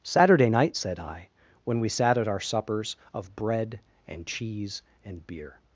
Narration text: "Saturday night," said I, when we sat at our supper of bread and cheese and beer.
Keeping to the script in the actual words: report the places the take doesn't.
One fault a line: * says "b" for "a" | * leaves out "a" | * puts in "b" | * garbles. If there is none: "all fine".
* says "suppers" for "supper"